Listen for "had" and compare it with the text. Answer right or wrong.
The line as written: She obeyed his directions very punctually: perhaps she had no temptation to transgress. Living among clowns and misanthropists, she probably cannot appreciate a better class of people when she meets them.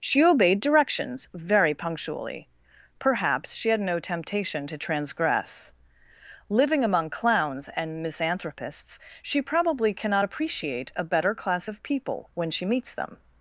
right